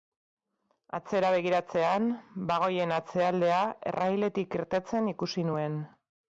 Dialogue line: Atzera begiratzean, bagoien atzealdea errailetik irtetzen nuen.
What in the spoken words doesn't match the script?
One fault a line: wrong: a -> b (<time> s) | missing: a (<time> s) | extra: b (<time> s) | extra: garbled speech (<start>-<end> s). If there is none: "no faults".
extra: ikusi (5.2 s)